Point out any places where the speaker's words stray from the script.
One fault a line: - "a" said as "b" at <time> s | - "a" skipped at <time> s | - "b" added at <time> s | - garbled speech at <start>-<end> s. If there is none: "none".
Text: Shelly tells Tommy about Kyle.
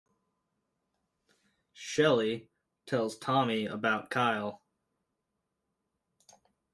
none